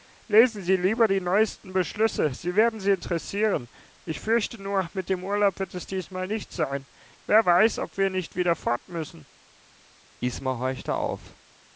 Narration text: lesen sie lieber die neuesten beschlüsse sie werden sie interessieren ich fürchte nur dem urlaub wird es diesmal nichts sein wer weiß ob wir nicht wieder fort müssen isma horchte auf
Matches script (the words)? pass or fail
fail